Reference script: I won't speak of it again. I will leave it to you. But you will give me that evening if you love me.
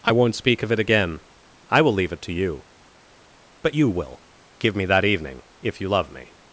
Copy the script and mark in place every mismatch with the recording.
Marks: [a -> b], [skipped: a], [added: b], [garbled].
I won't speak of it again. I will leave it to you. But you will give me that evening if you love me.